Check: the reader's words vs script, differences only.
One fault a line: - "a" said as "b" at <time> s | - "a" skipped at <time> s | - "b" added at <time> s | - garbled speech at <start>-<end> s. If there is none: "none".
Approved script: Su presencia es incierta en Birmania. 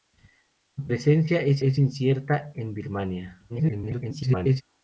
- "es" added at 1.6 s
- garbled speech at 3.5-4.6 s